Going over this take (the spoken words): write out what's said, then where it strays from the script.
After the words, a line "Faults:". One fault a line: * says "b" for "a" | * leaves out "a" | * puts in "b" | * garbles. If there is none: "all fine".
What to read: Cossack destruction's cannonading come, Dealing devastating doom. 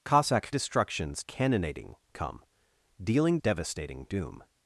Cossack destruction's cannonading come, Dealing devastating doom.
Faults:
all fine